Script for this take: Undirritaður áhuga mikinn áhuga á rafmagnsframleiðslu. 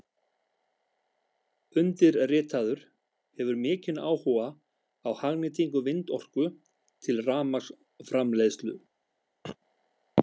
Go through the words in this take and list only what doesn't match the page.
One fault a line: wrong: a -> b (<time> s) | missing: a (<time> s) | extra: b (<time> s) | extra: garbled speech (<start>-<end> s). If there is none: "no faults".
wrong: áhuga -> hefur (3.4 s)
extra: hagnýtingu vindorku til (5.2 s)